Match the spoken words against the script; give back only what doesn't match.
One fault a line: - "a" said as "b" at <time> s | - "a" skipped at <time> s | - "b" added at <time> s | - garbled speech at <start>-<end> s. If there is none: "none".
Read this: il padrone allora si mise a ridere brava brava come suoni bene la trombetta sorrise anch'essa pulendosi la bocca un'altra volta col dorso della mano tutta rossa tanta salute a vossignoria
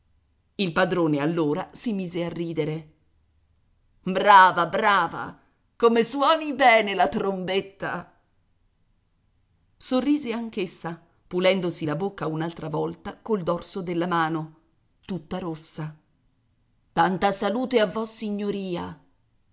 none